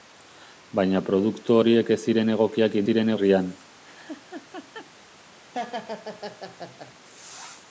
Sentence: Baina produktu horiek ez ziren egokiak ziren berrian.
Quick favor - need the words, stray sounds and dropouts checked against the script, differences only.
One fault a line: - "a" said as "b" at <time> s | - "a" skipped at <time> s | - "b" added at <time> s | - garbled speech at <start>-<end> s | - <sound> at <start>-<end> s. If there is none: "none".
- laugh at 3.8-4.9 s
- laugh at 5.5-6.9 s